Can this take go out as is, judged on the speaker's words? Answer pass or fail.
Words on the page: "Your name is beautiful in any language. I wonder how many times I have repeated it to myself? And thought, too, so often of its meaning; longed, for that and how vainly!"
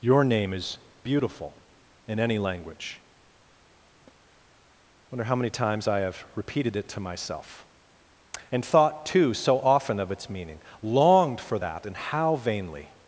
pass